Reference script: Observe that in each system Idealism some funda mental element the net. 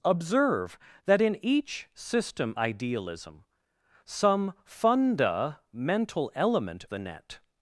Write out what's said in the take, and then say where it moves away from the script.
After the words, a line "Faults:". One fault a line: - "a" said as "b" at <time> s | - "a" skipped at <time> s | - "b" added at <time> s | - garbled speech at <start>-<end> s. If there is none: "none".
Observe that in each system Idealism some funda mental element the net.
Faults:
none